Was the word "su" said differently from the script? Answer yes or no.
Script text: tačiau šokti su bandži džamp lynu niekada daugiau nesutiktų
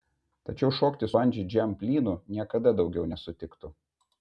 yes